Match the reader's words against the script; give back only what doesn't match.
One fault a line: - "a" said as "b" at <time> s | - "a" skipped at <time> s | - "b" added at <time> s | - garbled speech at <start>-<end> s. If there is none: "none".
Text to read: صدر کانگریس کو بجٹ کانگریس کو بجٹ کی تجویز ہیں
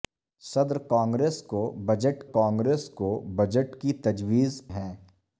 none